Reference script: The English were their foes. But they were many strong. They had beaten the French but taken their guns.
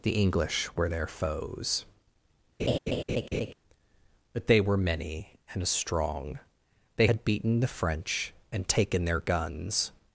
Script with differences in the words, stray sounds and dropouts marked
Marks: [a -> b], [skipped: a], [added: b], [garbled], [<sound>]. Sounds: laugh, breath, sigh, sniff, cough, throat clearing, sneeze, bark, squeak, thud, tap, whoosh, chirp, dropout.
The English were their foes. [laugh] But they were many [added: and] strong. They had beaten the French [but -> and] taken their guns.